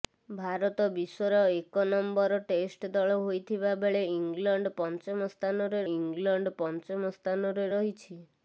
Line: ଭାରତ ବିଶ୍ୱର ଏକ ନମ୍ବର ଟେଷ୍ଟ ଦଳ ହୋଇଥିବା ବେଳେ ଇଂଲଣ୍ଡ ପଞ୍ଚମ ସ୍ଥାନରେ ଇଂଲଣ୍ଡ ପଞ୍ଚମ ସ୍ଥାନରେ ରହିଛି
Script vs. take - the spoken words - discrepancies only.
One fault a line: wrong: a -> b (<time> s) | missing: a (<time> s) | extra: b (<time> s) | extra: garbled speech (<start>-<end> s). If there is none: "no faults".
no faults